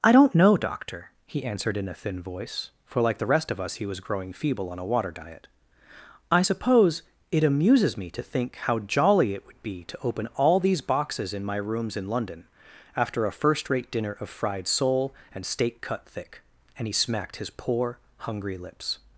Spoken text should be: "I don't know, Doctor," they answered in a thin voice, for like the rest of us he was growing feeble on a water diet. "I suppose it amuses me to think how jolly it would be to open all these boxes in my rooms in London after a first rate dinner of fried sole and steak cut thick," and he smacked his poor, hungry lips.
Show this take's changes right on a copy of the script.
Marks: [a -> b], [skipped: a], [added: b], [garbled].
"I don't know, Doctor," [they -> he] answered in a thin voice, for like the rest of us he was growing feeble on a water diet. "I suppose it amuses me to think how jolly it would be to open all these boxes in my rooms in London after a first rate dinner of fried sole and steak cut thick," and he smacked his poor, hungry lips.